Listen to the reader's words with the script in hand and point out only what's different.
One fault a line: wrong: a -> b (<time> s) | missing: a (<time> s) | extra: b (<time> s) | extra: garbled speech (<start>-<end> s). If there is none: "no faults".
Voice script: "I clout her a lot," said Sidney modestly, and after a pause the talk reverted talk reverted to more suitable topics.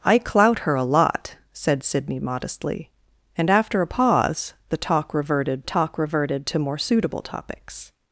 no faults